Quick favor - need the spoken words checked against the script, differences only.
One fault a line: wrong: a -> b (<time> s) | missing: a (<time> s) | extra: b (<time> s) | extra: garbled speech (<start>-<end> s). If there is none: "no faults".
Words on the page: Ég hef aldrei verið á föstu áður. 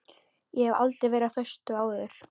no faults